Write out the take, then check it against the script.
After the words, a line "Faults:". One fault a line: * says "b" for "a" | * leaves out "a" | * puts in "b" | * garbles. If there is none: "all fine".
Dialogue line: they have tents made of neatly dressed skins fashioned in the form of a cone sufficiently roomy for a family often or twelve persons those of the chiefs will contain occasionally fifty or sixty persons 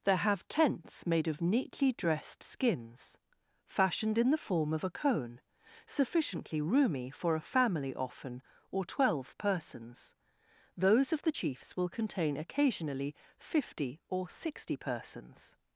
there have tents made of neatly dressed skins fashioned in the form of a cone sufficiently roomy for a family often or twelve persons those of the chiefs will contain occasionally fifty or sixty persons
Faults:
* says "there" for "they"